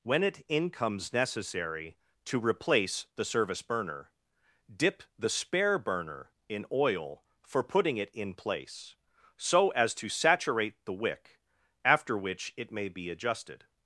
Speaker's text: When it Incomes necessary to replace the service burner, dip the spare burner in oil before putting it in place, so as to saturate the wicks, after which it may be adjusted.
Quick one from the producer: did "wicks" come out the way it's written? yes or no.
no